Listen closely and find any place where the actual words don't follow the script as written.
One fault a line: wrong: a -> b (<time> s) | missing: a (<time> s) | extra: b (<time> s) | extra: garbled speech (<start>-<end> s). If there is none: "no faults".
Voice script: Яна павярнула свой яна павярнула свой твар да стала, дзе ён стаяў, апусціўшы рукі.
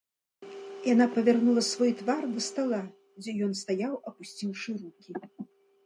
missing: яна павярнула свой (1.9 s)